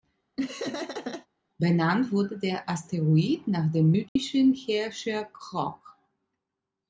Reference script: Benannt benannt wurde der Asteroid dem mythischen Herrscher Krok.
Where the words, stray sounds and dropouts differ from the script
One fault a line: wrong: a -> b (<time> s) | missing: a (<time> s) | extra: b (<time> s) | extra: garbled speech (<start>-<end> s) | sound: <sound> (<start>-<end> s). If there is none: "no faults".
sound: laugh (0.4-1.3 s)
missing: benannt (2.1 s)
extra: nach (3.5 s)
sound: dropout (4.1-4.2 s)